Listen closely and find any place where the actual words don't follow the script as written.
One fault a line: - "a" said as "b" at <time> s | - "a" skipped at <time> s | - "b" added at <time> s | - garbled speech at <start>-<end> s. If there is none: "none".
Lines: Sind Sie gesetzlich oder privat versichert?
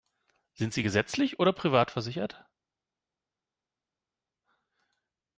none